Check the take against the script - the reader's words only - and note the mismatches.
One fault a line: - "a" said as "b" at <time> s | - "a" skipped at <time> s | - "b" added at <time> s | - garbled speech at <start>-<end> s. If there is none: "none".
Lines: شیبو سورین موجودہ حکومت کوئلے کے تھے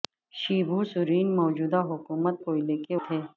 none